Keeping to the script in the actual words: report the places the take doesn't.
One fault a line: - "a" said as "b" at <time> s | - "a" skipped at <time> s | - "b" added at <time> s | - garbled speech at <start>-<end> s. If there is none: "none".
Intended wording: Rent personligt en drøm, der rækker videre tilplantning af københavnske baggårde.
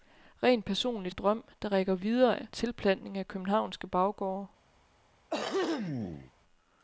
none